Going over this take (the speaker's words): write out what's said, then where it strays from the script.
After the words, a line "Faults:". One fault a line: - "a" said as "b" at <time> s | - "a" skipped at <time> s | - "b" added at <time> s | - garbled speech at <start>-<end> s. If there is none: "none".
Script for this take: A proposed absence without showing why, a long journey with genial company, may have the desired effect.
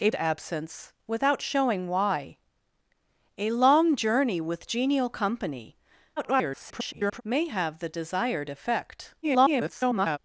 A absence without showing why, a long journey with genial company, [garbled] may have the desired effect. [garbled]
Faults:
- "proposed" skipped at 0.1 s
- garbled speech at 6.2-7.2 s
- garbled speech at 9.2-10.2 s